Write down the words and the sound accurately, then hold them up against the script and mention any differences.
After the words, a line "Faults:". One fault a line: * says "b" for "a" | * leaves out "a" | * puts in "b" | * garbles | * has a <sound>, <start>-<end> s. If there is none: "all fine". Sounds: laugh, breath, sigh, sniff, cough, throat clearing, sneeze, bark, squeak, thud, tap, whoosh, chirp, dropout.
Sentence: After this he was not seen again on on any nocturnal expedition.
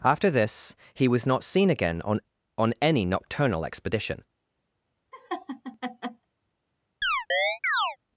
After this he was not seen again on on any nocturnal expedition.
Faults:
* has a laugh, 5.1-6.2 s
* has a chirp, 7.0-8.0 s